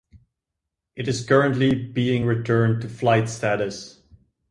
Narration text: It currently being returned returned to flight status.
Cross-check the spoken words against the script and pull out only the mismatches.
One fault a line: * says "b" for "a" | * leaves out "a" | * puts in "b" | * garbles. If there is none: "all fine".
* puts in "is"
* leaves out "returned"